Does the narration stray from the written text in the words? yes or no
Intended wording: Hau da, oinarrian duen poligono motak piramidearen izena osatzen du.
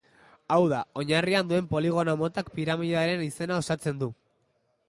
no